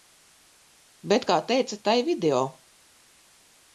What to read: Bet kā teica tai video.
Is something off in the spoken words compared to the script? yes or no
no